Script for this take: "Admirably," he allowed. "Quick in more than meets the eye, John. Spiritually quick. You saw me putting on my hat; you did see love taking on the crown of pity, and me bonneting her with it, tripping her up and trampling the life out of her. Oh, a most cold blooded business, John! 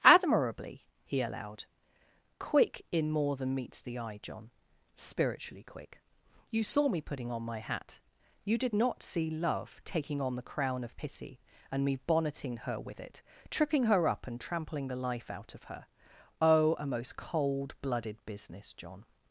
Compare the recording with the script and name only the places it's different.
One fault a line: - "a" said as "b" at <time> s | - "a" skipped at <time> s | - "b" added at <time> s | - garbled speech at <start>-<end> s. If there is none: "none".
- "not" added at 8.7 s